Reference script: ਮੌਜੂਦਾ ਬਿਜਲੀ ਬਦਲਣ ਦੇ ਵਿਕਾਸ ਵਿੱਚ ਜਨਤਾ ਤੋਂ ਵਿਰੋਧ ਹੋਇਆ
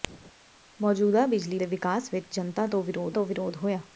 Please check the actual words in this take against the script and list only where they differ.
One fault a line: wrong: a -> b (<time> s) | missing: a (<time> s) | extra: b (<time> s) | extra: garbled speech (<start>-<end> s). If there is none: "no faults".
missing: ਬਦਲਣ (1.6 s)
extra: ਤੋਂ ਵਿਰੋਧ (3.1 s)